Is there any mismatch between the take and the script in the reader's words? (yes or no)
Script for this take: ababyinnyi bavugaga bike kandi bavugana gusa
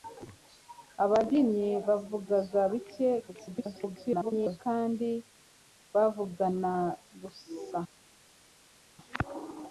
yes